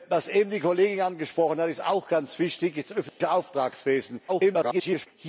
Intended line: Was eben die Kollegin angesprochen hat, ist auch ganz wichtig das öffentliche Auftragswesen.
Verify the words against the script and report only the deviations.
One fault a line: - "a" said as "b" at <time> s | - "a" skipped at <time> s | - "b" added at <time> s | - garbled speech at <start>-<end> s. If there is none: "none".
- garbled speech at 4.3-5.1 s